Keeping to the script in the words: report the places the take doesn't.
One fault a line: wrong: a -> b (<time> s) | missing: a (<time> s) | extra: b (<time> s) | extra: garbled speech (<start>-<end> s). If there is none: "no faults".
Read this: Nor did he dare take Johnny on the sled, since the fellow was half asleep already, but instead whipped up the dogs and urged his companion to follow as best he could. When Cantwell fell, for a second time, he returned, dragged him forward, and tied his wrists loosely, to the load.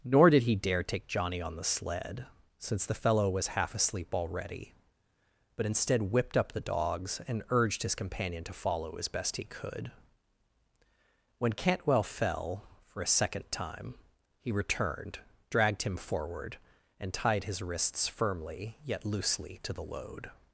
extra: firmly yet (18.1 s)